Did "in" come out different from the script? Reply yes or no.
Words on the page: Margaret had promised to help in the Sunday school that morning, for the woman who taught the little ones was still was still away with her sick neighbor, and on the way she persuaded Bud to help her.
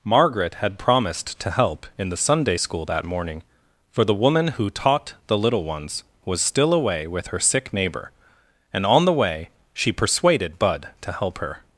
no